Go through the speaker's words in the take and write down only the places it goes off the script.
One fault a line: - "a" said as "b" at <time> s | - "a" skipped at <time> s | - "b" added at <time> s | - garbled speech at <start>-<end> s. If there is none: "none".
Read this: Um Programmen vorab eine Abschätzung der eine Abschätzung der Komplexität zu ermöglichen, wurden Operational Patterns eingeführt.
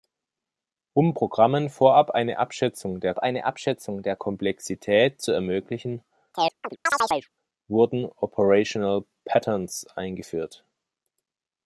none